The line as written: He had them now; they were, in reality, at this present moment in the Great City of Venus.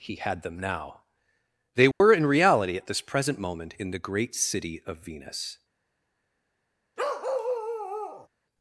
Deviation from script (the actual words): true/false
false